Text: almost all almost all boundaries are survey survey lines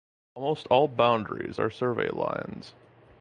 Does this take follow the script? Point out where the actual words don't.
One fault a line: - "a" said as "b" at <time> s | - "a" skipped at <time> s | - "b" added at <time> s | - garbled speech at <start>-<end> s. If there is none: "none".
- "almost all" skipped at 0.9 s
- "survey" skipped at 2.1 s